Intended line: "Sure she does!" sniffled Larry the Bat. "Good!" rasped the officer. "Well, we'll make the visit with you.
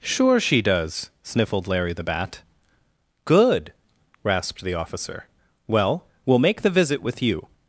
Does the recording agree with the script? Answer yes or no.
yes